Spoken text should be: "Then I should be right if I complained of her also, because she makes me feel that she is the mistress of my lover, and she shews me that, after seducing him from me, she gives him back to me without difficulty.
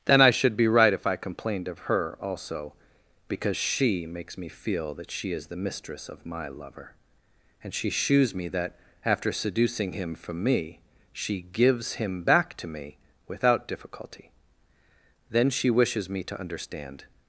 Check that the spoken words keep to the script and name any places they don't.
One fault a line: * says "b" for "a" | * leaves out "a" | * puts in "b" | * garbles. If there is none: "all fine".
* puts in "Then she wishes me to understand"